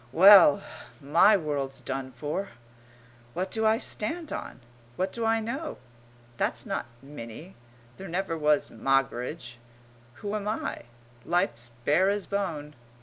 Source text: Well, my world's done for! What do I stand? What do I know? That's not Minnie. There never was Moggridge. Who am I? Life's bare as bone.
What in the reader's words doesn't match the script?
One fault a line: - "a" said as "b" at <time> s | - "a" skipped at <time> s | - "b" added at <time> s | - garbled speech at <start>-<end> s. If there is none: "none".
- "on" added at 4.3 s